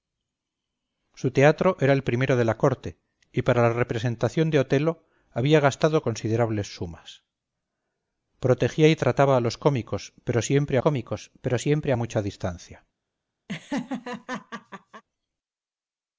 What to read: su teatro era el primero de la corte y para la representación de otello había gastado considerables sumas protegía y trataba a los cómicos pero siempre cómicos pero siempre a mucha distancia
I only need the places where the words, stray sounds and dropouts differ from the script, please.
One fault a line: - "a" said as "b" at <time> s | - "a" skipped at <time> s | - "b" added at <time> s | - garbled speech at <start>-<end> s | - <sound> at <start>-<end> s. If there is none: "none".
- laugh at 13.5-15.0 s